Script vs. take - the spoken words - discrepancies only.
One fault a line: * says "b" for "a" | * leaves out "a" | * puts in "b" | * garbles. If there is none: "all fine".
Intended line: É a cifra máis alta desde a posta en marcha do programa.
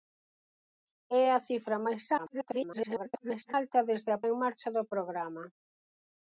* garbles
* leaves out "posta"